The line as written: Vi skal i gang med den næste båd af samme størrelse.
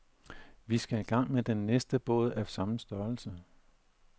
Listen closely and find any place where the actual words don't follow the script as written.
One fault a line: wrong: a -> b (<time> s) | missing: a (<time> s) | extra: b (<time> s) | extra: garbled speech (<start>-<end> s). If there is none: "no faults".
no faults